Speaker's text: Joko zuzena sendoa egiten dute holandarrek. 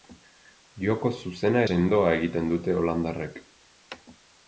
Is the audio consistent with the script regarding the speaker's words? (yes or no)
yes